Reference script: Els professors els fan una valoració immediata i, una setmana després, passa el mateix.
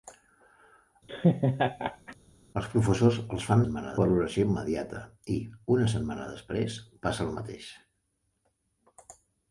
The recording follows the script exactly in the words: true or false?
false